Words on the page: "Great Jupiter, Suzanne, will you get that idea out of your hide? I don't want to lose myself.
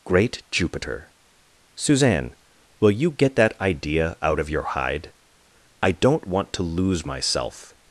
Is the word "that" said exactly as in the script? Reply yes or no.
yes